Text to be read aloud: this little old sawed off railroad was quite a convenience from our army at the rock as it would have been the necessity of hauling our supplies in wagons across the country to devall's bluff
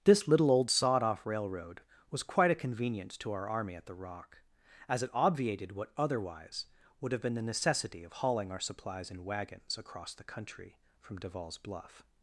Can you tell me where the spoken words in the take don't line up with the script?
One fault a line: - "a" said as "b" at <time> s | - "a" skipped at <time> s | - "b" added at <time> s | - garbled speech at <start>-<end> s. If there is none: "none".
- "from" said as "to" at 3.2 s
- "obviated what otherwise" added at 5.1 s
- "to" said as "from" at 11.0 s